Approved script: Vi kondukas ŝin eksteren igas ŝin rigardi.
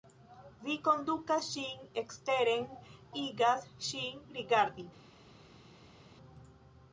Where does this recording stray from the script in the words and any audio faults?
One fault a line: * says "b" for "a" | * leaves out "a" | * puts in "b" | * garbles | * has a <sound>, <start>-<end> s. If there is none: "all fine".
all fine